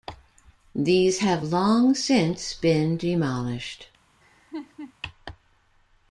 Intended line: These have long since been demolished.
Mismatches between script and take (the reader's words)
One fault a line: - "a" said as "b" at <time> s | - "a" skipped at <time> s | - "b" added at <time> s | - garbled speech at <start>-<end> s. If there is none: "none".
none